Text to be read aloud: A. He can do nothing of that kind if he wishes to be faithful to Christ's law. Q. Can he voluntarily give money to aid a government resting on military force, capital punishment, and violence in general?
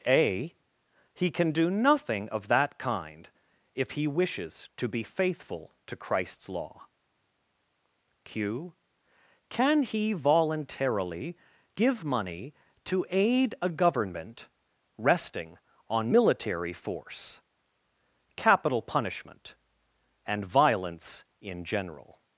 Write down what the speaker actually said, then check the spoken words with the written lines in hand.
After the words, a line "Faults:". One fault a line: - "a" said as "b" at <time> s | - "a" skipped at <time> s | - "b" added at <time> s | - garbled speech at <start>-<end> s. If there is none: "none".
A. He can do nothing of that kind if he wishes to be faithful to Christ's law. Q. Can he voluntarily give money to aid a government resting on military force, capital punishment, and violence in general?
Faults:
none